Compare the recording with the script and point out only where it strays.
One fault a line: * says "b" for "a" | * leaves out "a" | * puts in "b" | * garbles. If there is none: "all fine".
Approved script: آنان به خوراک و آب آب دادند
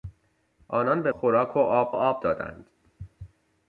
all fine